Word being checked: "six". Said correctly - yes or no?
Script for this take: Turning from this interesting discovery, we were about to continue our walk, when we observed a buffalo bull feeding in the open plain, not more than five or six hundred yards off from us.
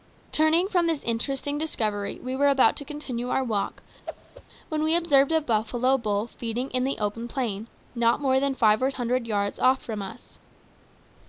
no